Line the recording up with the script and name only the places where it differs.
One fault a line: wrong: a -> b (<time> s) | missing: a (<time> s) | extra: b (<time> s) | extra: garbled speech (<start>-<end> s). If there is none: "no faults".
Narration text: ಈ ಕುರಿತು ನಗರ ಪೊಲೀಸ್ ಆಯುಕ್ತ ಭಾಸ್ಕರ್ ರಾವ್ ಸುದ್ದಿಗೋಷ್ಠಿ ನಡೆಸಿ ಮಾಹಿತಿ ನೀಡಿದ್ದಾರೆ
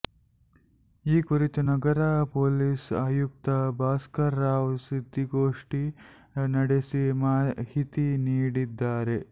no faults